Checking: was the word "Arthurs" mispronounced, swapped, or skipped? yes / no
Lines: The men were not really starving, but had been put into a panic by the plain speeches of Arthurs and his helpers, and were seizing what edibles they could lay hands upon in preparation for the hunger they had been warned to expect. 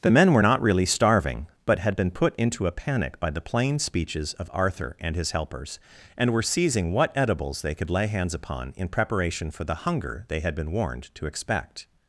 yes